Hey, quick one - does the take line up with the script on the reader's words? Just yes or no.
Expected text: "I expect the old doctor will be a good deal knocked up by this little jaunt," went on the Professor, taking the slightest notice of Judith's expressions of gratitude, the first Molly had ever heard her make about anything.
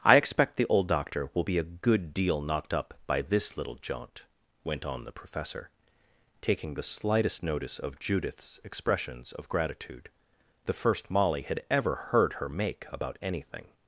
yes